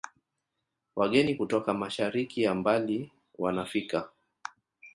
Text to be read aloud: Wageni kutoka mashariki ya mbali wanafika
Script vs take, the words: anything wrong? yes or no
no